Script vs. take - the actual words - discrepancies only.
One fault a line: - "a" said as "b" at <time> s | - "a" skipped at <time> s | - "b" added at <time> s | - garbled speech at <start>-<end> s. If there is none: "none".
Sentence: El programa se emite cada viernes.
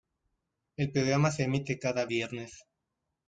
none